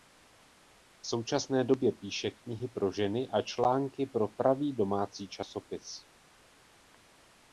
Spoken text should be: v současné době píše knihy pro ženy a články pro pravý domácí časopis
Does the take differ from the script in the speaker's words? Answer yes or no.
no